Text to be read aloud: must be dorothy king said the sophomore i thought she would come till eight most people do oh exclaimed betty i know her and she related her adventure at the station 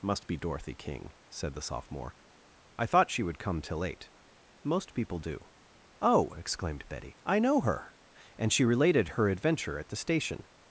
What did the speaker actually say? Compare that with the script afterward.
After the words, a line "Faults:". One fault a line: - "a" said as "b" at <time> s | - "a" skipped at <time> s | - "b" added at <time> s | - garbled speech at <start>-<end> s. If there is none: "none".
must be dorothy king said the sophomore i thought she would come till eight most people do oh exclaimed betty i know her and she related her adventure at the station
Faults:
none